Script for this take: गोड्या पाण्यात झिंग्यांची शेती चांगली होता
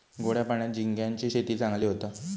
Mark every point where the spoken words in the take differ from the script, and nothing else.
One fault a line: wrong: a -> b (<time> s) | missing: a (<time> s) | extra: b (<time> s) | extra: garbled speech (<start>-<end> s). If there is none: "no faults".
no faults